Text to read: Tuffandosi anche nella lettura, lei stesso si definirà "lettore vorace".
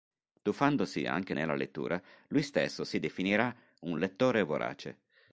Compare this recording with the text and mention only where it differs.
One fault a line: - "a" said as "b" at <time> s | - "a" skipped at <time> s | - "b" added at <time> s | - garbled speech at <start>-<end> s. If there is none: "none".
- "lei" said as "lui" at 2.3 s
- "un" added at 3.8 s